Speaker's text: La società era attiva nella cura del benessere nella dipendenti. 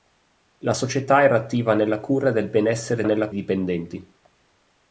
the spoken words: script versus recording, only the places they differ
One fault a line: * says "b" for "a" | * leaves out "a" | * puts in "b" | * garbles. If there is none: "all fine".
all fine